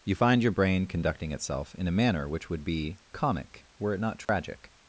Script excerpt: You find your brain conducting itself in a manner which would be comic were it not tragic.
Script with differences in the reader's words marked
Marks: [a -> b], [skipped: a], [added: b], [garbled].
You find your brain conducting itself in a manner which would be comic were it not tragic.